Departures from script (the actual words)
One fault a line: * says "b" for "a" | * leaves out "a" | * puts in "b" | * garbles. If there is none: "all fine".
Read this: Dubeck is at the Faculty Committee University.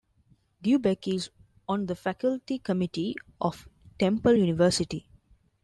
* says "on" for "at"
* puts in "of Temple"